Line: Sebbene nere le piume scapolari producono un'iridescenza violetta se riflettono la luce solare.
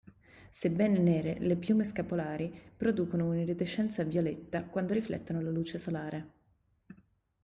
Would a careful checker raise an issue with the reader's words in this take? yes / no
yes